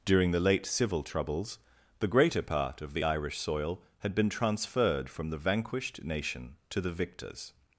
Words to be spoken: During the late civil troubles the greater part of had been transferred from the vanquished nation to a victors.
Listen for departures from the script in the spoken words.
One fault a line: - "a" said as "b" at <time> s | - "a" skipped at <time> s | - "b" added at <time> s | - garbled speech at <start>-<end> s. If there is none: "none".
- "the Irish soil" added at 2.9 s
- "a" said as "the" at 6.8 s